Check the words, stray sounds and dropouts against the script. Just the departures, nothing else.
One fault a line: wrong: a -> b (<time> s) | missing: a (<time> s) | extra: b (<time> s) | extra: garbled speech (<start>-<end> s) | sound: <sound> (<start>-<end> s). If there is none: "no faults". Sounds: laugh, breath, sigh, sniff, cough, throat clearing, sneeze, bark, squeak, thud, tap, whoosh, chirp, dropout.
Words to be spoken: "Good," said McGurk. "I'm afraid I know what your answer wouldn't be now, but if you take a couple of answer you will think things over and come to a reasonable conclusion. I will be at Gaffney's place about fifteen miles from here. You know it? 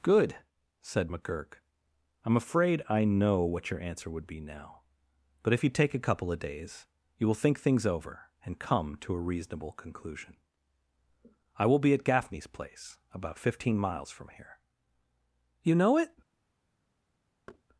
wrong: wouldn't -> would (4.1 s)
wrong: answer -> days (6.4 s)
sound: thud (17.5-17.6 s)